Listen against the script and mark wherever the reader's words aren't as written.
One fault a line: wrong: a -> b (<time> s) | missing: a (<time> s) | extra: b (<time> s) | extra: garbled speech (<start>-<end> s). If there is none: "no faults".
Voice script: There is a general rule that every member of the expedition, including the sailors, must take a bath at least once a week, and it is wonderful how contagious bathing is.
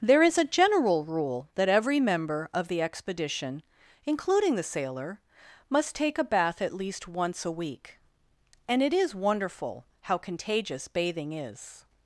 wrong: sailors -> sailor (4.6 s)